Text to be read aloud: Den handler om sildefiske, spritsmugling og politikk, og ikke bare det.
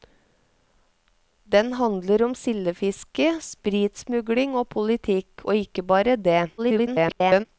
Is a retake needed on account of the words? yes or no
yes